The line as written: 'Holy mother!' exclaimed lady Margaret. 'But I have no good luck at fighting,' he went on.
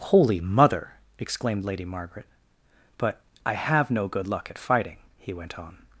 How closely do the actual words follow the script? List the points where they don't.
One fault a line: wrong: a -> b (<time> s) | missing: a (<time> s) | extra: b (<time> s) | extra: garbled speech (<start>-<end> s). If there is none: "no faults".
no faults